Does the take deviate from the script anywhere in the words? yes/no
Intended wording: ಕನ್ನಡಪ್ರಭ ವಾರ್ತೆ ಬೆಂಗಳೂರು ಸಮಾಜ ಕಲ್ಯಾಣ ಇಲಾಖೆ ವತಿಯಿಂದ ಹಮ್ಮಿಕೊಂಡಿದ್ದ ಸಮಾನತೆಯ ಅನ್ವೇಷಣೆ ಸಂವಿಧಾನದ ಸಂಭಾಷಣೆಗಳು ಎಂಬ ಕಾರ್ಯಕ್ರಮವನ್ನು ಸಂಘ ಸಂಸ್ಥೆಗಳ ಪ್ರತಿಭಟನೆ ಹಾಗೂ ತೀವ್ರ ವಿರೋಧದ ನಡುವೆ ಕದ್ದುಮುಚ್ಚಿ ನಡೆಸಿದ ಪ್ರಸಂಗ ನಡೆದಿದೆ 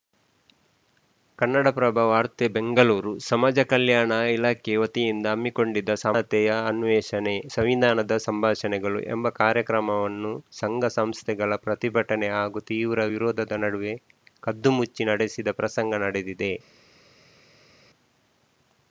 no